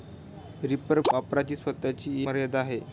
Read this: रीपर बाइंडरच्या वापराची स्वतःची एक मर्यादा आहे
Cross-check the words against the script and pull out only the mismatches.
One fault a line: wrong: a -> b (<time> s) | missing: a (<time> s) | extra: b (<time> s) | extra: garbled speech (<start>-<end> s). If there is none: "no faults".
missing: बाइंडरच्या (1.0 s)
missing: एक (2.3 s)